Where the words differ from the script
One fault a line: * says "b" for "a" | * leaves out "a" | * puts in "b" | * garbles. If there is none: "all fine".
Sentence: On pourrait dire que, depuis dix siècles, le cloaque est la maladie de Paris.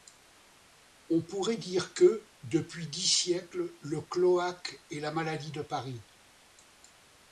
all fine